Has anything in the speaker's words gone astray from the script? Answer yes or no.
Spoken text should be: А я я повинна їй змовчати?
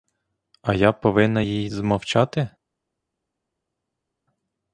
yes